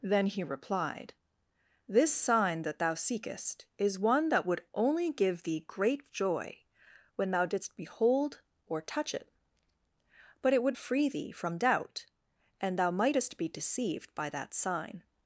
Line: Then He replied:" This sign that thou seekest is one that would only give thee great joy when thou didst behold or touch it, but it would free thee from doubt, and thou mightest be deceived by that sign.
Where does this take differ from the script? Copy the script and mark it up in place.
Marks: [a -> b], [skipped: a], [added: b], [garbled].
Then He replied:" This sign that thou seekest is one that would only give thee great joy when thou didst behold or touch it, but it would free thee from doubt, and thou mightest be deceived by that sign.